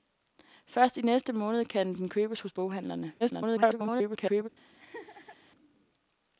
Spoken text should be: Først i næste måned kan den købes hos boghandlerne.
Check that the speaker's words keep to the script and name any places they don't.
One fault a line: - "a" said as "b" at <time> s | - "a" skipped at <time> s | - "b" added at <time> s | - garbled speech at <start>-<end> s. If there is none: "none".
- garbled speech at 3.2-4.5 s